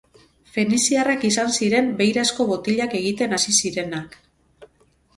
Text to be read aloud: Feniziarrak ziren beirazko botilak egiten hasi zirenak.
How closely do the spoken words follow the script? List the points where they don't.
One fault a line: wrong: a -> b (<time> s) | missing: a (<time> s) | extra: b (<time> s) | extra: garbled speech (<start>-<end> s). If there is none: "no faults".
extra: izan (1.3 s)